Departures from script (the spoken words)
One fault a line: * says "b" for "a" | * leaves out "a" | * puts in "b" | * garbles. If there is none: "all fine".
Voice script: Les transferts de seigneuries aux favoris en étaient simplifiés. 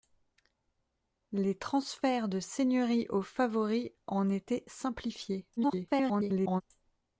* garbles